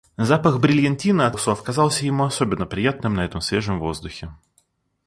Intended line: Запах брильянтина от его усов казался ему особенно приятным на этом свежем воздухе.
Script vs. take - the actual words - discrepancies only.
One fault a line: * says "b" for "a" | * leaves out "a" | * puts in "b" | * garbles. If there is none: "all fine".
* leaves out "его"